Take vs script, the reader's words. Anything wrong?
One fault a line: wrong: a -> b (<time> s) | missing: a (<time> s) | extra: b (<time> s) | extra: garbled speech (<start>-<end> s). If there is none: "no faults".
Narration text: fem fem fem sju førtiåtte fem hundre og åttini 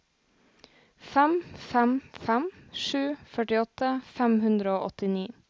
no faults